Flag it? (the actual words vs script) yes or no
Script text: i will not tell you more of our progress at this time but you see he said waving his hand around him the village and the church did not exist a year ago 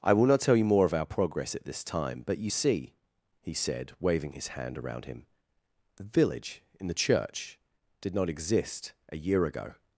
yes